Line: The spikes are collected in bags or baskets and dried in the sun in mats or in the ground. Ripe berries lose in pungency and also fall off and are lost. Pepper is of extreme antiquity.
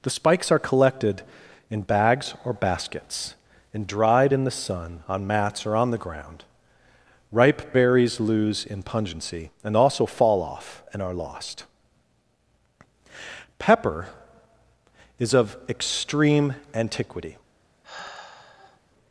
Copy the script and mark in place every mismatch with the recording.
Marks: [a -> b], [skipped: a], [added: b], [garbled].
The spikes are collected in bags or baskets and dried in the sun [in -> on] mats or [in -> on] the ground. Ripe berries lose in pungency and also fall off and are lost. Pepper is of extreme antiquity.